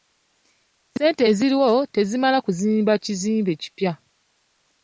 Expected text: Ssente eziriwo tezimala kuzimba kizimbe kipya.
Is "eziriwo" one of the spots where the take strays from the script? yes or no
no